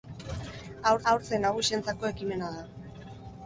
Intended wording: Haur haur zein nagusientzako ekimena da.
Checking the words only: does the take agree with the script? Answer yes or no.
yes